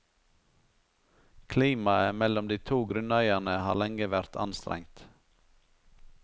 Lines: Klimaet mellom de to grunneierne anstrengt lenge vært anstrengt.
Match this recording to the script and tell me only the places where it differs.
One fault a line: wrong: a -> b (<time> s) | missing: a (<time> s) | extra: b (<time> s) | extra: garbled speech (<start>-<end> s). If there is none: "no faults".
wrong: anstrengt -> har (3.7 s)